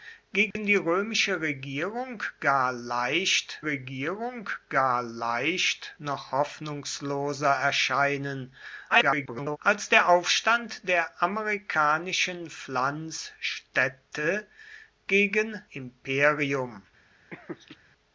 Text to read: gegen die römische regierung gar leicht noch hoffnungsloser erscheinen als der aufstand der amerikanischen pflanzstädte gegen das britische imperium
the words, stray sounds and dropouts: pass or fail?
fail